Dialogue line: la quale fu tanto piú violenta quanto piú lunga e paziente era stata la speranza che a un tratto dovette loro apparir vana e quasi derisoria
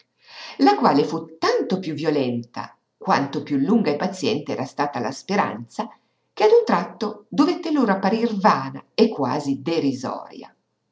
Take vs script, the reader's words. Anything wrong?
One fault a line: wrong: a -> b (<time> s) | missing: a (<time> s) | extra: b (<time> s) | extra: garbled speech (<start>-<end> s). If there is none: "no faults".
no faults